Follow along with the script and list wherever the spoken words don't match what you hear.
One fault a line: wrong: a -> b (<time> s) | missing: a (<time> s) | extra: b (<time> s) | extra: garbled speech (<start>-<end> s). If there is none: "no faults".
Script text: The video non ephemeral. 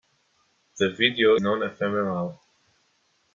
no faults